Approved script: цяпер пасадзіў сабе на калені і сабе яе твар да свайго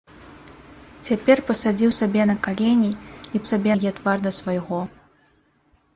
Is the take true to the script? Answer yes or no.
yes